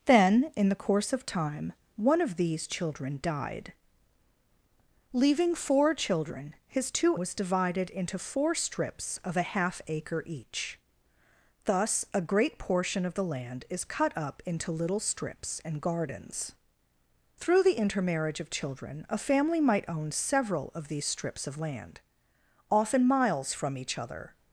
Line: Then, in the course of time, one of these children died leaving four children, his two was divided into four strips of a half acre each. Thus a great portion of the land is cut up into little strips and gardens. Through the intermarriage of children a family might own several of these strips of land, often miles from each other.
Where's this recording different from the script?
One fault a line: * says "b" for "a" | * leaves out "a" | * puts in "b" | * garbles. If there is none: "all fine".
all fine